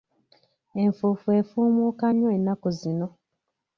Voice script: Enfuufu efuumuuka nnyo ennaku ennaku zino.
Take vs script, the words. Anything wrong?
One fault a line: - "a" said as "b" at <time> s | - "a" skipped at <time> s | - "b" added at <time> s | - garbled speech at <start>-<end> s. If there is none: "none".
- "ennaku" skipped at 2.7 s